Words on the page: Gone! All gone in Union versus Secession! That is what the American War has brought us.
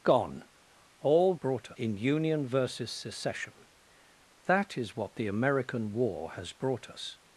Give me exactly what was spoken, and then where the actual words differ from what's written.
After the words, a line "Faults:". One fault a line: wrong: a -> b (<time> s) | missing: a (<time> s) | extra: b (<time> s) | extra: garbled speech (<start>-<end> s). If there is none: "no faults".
Gone! All brought in Union versus Secession! That is what the American War has brought us.
Faults:
wrong: gone -> brought (1.3 s)